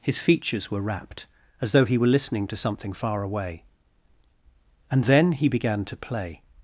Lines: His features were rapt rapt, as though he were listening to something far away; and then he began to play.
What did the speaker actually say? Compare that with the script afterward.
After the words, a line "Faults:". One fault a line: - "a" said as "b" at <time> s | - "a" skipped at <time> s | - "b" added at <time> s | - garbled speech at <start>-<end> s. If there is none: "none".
His features were rapt, as though he were listening to something far away; and then he began to play.
Faults:
- "rapt" skipped at 1.3 s